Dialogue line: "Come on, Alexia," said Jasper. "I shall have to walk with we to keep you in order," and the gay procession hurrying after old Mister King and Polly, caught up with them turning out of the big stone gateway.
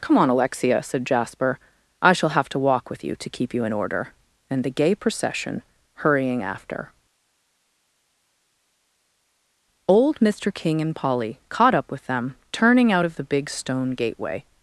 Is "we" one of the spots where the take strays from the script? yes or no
yes